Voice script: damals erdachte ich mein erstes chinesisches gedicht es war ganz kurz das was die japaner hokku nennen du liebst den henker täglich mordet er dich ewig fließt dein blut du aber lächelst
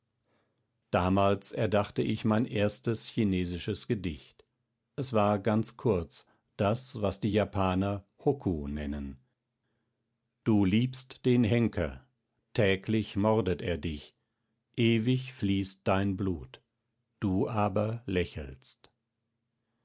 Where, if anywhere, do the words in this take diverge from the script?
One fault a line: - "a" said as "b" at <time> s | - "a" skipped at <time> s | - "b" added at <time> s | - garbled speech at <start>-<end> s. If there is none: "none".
none